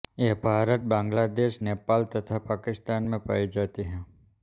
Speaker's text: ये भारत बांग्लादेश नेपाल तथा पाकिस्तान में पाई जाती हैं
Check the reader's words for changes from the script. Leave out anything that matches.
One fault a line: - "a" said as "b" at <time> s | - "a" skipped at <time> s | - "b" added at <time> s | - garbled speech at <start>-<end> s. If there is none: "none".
none